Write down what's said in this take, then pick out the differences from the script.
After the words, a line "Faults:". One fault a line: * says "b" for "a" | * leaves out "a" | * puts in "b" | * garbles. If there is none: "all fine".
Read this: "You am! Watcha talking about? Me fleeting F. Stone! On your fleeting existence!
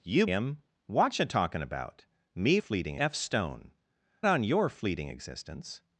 "You am! Watcha talking about? Me fleeting F. Stone! On your fleeting existence!
Faults:
all fine